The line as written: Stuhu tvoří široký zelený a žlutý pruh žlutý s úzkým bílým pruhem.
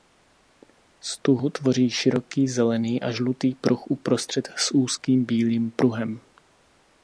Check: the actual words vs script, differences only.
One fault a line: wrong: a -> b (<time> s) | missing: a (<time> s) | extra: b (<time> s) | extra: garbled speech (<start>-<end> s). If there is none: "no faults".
wrong: žlutý -> uprostřed (3.9 s)